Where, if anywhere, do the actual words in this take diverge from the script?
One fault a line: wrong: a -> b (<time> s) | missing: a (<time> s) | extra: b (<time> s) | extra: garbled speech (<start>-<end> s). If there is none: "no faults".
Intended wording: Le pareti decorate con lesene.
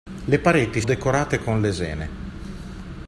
no faults